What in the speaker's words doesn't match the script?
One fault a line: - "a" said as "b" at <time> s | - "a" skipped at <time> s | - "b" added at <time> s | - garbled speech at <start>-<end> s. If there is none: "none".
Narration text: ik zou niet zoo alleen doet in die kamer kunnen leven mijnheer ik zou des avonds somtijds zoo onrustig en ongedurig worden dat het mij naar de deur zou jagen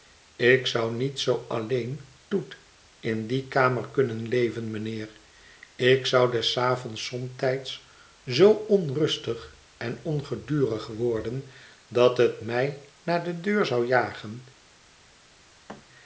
none